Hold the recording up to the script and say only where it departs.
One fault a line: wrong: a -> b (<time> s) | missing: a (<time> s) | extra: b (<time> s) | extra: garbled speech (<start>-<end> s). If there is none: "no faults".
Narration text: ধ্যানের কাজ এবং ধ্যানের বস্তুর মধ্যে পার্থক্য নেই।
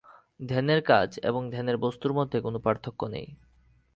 extra: কোন (2.4 s)